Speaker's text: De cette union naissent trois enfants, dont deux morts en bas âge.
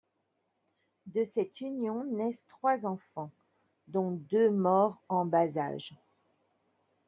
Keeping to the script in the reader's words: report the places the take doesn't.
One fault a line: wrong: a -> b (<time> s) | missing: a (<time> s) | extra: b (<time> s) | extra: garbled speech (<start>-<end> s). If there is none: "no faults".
no faults